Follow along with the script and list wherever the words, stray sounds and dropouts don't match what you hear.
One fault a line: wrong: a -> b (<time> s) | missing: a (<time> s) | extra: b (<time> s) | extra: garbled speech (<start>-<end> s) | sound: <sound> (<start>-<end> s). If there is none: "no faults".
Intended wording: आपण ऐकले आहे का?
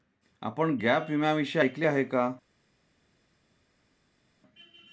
extra: गॅप विम्याविषयी (0.8 s)